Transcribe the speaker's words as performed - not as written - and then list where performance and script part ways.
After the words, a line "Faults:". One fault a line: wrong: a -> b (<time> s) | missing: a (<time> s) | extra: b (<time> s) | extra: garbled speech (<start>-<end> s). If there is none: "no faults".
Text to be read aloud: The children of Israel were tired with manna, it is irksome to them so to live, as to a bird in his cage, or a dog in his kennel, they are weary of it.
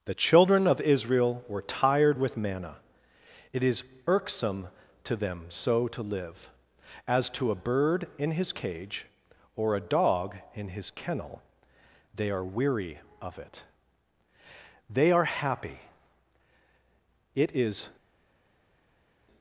The children of Israel were tired with manna, it is irksome to them so to live, as to a bird in his cage, or a dog in his kennel, they are weary of it. They are happy, it is
Faults:
extra: They are happy it is (14.9 s)